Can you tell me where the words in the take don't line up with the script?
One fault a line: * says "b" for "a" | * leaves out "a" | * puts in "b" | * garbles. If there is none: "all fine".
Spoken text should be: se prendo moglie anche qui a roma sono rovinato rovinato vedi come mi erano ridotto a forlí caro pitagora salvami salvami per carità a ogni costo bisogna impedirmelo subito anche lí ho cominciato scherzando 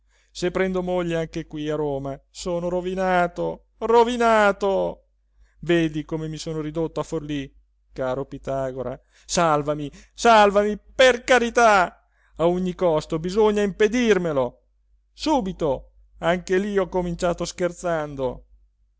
* says "sono" for "erano"